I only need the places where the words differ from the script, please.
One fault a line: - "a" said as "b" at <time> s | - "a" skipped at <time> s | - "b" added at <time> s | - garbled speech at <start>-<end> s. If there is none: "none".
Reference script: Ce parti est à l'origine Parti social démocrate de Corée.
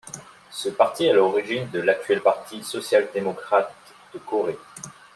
- "de l'actuel" added at 1.7 s